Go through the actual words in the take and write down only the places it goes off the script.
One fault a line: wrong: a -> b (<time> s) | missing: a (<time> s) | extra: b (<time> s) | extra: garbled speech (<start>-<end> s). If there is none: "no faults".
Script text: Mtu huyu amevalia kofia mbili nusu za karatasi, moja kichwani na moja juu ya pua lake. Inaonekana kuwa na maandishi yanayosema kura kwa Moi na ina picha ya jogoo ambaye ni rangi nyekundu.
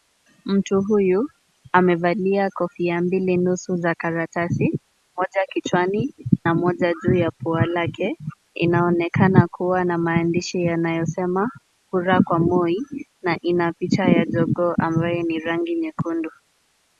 no faults